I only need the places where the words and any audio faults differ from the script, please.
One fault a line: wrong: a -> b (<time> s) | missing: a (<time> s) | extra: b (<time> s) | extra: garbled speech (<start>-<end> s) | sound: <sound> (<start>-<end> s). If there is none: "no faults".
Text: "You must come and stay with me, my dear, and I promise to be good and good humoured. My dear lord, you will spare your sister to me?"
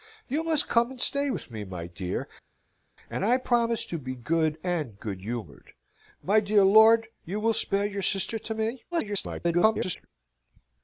extra: garbled speech (8.9-10.1 s)